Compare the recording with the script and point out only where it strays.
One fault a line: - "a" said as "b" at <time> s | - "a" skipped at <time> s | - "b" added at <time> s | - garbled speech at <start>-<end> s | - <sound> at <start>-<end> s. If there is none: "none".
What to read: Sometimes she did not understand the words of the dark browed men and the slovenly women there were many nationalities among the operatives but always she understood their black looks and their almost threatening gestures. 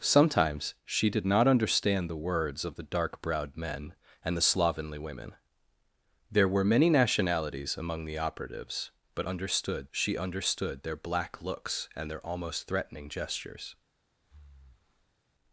- "always" said as "understood" at 9.2 s
- breath at 14.2-15.2 s